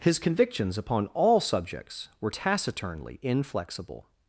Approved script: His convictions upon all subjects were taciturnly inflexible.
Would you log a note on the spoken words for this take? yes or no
no